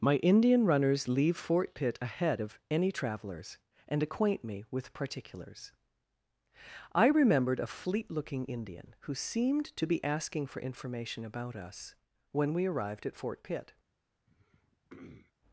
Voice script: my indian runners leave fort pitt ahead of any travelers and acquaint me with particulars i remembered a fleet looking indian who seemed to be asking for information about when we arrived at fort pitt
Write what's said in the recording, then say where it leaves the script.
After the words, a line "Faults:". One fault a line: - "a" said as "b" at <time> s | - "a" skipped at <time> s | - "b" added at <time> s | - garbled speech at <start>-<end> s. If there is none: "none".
my indian runners leave fort pitt ahead of any travelers and acquaint me with particulars i remembered a fleet looking indian who seemed to be asking for information about us when we arrived at fort pitt
Faults:
- "us" added at 11.6 s